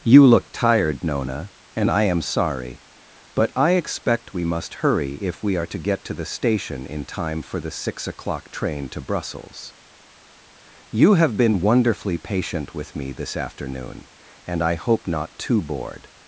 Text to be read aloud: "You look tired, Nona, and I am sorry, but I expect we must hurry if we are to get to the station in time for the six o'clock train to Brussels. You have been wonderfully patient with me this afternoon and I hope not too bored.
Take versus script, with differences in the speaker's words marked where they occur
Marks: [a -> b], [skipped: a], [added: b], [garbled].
"You look tired, Nona, and I am sorry, but I expect we must hurry if we are to get to the station in time for the six o'clock train to Brussels. You have been wonderfully patient with me this afternoon and I hope not too bored.